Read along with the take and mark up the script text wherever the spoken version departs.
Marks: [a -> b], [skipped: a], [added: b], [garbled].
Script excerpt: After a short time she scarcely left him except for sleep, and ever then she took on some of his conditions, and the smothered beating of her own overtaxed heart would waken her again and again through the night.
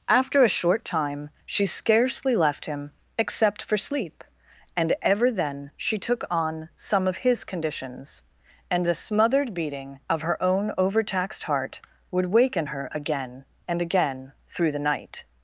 After a short time she scarcely left him except for sleep, and ever then she took on some of his conditions, and the smothered beating of her own overtaxed heart would waken her again and again through the night.